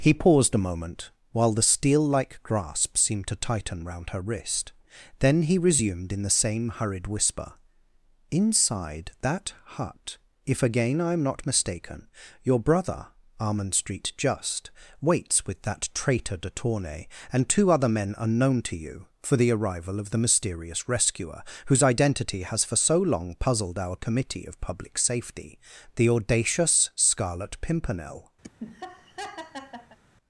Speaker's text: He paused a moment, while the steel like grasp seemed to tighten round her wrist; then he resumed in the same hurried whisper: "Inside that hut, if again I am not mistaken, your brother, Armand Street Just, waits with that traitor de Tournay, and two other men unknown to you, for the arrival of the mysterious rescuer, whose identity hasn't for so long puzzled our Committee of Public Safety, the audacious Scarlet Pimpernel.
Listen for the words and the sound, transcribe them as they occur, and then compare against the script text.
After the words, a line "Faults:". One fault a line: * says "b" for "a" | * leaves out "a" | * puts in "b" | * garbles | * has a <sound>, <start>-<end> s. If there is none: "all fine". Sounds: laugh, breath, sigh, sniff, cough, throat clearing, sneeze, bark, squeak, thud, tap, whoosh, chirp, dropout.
He paused a moment, while the steel like grasp seemed to tighten round her wrist; then he resumed in the same hurried whisper: "Inside that hut, if again I am not mistaken, your brother, Armand Street Just, waits with that traitor de Tournay, and two other men unknown to you, for the arrival of the mysterious rescuer, whose identity has for so long puzzled our Committee of Public Safety, the audacious Scarlet Pimpernel.
Faults:
* says "has" for "hasn't"
* has a laugh, 28.4-30.0 s